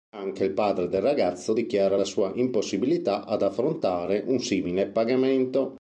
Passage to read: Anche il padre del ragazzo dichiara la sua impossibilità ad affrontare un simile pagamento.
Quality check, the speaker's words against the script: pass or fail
pass